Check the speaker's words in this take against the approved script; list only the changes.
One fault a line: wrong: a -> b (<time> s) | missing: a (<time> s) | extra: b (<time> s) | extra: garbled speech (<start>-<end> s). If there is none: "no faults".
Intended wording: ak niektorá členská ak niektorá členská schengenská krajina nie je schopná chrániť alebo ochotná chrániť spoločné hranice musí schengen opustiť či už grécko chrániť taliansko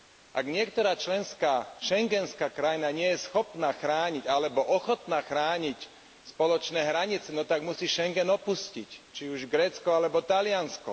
missing: ak niektorá členská (1.8 s)
extra: no tak (7.3 s)
wrong: chrániť -> alebo (9.9 s)